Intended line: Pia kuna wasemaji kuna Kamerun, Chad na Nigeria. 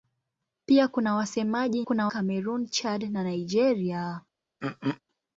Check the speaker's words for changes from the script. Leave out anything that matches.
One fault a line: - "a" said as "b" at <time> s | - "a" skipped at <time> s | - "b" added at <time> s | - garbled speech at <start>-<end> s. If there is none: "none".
none